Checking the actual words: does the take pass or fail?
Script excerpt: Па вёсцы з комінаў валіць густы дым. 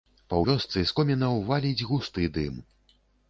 pass